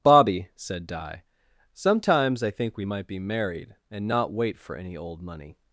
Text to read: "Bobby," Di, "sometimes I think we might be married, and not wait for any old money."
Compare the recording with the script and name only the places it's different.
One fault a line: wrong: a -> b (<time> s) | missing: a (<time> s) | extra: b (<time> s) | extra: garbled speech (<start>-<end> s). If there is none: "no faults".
extra: said (0.6 s)